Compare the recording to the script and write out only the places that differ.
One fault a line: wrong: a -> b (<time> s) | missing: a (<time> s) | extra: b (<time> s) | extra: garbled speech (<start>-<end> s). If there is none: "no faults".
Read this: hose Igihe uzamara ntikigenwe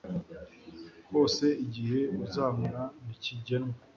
no faults